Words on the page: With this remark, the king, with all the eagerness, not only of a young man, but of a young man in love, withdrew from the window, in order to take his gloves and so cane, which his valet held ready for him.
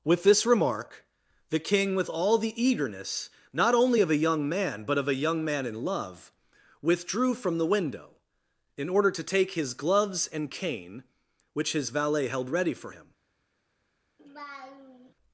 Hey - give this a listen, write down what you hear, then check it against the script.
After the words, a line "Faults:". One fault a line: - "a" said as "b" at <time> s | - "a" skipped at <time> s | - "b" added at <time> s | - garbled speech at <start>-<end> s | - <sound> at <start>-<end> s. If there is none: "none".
With this remark, the king, with all the eagerness, not only of a young man, but of a young man in love, withdrew from the window, in order to take his gloves and cane, which his valet held ready for him.
Faults:
- "so" skipped at 10.5 s
- laugh at 14.2-15.1 s